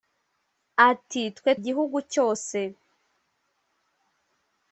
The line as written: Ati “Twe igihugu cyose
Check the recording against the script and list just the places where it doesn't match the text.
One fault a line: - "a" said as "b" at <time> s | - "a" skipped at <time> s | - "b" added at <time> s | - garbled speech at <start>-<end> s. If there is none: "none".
none